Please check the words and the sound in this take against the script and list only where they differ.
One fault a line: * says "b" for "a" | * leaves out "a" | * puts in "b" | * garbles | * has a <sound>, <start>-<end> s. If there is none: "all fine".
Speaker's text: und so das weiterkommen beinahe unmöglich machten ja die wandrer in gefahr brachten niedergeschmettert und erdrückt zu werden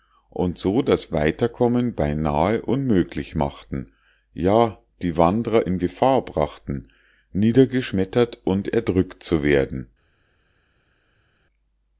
all fine